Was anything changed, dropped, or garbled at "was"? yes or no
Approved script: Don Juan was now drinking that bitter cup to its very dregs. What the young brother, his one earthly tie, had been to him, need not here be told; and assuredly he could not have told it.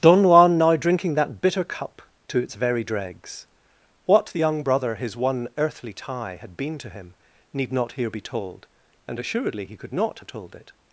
yes